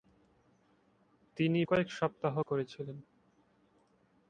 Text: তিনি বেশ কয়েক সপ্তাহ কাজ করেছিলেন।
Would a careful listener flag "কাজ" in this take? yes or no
yes